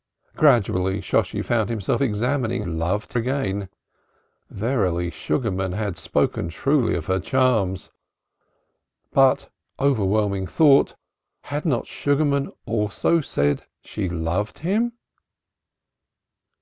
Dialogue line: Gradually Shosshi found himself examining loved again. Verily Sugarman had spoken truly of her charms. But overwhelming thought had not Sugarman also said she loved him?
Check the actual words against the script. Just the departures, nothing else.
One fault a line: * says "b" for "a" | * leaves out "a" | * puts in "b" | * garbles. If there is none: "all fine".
all fine